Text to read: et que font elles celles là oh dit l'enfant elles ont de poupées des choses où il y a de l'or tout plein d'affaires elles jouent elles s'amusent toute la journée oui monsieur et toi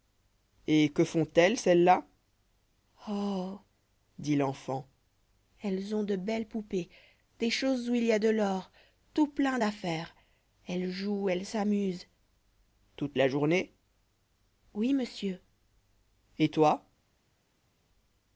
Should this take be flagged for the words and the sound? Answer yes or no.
yes